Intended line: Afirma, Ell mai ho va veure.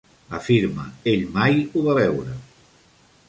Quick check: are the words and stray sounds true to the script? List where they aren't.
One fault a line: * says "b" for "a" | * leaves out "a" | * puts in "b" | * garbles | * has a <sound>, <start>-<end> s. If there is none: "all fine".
all fine